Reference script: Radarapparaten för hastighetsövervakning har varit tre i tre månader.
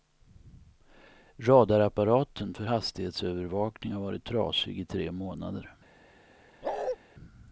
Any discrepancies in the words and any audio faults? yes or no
yes